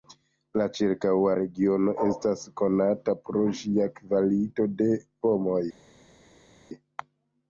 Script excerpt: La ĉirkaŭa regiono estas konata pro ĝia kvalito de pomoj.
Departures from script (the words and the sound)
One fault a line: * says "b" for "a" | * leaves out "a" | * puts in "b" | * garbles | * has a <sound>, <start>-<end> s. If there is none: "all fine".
all fine